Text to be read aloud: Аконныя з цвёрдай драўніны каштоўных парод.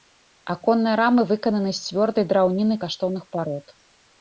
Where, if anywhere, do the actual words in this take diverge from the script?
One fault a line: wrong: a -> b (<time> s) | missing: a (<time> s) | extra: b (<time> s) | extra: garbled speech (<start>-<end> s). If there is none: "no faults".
extra: рамы выкананы (1.0 s)